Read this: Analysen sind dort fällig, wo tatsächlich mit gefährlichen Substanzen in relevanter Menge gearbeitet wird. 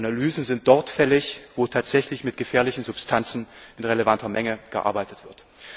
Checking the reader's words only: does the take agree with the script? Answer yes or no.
yes